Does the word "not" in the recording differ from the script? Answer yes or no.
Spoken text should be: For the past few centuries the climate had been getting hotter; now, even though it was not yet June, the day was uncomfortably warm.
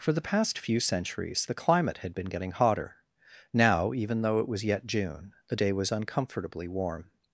yes